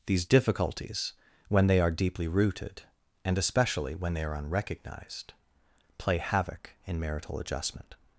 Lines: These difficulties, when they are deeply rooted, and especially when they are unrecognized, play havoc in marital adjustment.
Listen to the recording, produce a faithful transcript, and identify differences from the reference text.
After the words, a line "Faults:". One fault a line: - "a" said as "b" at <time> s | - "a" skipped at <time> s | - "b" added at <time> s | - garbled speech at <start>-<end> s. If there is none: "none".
These difficulties, when they are deeply rooted, and especially when they are unrecognized, play havoc in marital adjustment.
Faults:
none